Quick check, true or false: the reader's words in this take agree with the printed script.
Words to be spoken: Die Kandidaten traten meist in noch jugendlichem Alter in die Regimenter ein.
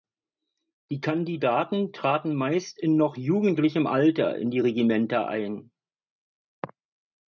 true